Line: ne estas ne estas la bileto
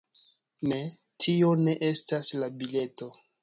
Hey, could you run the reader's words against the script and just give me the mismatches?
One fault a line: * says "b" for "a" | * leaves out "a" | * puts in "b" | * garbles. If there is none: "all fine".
* says "tio" for "estas"